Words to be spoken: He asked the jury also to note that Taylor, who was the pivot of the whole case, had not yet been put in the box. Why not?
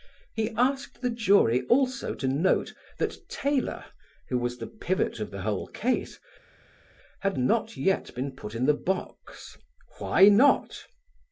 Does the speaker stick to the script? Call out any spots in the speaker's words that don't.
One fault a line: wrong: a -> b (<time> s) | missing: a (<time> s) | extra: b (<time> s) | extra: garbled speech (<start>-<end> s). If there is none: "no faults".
no faults